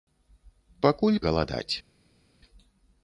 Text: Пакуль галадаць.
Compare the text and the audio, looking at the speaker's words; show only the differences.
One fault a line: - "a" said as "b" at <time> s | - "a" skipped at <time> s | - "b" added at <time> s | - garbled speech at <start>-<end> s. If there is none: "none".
none